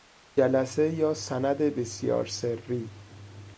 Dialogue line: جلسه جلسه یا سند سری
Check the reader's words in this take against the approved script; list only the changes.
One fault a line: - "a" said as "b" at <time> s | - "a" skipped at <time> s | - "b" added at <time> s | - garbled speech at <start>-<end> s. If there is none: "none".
- "جلسه" skipped at 0.9 s
- "بسیار" added at 1.6 s